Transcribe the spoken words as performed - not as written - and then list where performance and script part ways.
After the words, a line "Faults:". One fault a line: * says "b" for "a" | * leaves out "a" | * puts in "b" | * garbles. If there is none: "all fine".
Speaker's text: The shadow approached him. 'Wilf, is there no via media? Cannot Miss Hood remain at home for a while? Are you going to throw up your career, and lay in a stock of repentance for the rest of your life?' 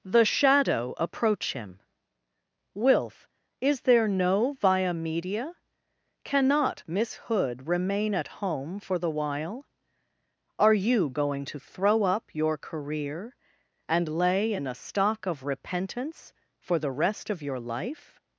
The shadow approach him. 'Wilf, is there no via media? Cannot Miss Hood remain at home for the while? Are you going to throw up your career, and lay in a stock of repentance for the rest of your life?'
Faults:
* says "approach" for "approached"
* says "the" for "a"